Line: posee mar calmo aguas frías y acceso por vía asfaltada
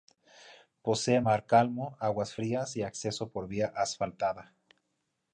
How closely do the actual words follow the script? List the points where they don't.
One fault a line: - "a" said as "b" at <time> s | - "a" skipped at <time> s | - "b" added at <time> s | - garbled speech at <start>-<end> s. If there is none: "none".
none